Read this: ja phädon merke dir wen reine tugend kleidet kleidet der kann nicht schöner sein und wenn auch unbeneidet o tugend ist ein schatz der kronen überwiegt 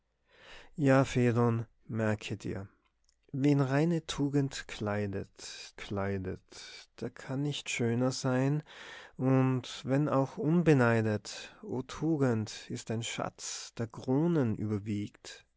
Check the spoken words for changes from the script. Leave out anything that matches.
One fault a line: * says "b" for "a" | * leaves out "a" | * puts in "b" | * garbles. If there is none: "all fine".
all fine